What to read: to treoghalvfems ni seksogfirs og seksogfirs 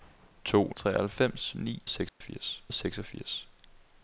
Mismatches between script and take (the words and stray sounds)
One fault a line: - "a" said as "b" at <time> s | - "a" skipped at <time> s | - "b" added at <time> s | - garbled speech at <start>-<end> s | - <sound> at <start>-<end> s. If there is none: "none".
- dropout at 2.1-2.2 s